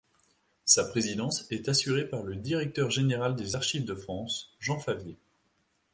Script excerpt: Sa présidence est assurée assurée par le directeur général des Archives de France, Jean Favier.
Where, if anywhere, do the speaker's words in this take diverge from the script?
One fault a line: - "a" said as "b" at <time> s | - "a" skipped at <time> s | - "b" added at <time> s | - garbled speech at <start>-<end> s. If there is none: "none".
- "assurée" skipped at 2.1 s